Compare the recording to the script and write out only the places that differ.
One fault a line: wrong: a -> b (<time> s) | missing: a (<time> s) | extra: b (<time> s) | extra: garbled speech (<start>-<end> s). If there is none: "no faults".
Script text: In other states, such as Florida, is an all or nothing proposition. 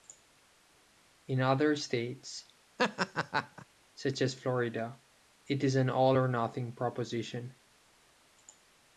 extra: it (5.5 s)